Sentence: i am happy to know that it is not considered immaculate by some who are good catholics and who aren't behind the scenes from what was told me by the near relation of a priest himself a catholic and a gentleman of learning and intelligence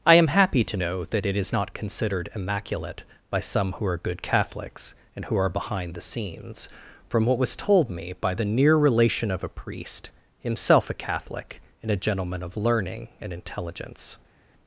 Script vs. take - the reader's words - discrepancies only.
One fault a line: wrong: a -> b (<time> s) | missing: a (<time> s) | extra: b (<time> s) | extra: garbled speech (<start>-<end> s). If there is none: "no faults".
wrong: aren't -> are (5.4 s)